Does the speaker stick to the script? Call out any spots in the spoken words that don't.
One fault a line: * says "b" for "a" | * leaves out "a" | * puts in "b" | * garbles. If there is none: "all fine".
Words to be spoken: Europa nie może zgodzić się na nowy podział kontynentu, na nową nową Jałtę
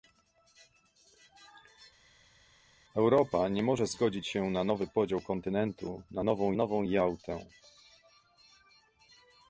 all fine